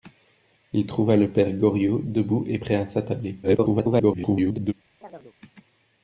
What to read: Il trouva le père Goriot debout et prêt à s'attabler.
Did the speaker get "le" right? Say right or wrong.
right